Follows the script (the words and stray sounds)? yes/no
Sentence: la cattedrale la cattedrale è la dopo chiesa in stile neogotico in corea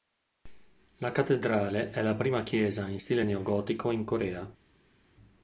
no